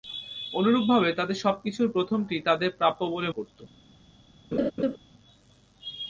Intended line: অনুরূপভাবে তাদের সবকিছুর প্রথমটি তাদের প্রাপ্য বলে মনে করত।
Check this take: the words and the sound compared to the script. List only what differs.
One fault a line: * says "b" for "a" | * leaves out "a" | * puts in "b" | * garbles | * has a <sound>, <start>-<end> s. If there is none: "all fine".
* leaves out "মনে"
* has a laugh, 4.5-5.0 s